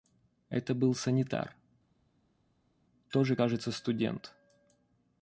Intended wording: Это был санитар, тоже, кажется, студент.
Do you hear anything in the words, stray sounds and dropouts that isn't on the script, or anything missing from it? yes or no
no